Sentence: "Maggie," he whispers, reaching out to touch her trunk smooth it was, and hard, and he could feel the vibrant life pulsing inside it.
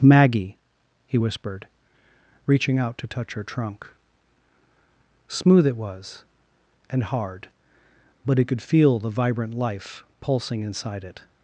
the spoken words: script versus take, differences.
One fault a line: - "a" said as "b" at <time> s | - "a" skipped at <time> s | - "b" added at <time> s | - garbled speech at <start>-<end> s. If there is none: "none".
- "whispers" said as "whispered" at 1.2 s
- "and" said as "but" at 8.3 s